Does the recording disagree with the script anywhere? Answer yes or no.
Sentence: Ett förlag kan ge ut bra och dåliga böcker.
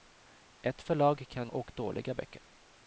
yes